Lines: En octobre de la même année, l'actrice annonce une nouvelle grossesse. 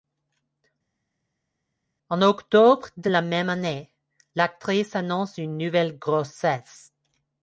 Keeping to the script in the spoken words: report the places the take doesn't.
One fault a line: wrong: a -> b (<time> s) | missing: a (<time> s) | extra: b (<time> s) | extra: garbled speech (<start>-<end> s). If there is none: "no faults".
no faults